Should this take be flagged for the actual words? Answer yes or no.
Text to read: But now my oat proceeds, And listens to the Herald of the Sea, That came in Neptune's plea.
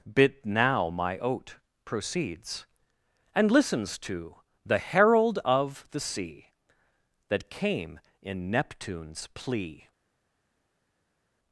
yes